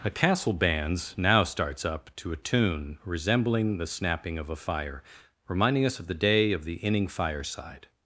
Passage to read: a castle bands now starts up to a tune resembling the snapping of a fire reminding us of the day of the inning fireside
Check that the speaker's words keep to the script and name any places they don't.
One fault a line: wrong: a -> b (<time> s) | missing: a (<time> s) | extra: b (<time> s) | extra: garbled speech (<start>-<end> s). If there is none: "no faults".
no faults